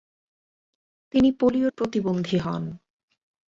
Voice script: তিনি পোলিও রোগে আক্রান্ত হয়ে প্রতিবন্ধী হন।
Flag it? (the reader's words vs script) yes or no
yes